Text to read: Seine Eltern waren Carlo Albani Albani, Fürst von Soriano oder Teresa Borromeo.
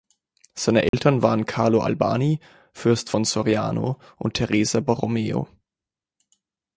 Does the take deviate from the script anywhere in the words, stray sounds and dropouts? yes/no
yes